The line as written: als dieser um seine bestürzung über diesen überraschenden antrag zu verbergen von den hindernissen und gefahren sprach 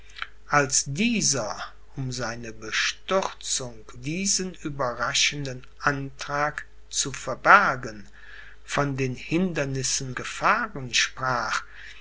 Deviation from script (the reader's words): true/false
true